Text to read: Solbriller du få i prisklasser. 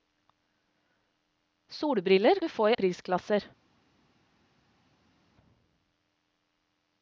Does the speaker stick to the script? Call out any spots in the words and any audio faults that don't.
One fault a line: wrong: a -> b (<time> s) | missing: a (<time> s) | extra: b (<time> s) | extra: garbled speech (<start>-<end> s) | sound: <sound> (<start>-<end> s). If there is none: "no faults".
no faults